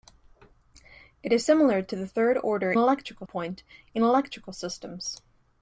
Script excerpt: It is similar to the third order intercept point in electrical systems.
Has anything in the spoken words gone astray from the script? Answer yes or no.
yes